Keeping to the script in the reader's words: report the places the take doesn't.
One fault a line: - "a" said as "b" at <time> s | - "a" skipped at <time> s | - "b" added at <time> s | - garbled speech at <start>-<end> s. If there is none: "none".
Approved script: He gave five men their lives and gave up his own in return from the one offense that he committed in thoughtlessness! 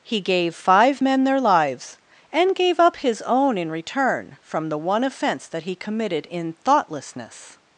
none